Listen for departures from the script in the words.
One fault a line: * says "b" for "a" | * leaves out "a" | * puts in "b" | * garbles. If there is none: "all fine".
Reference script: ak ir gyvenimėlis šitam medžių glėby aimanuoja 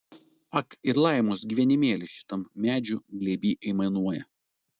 * puts in "laimos"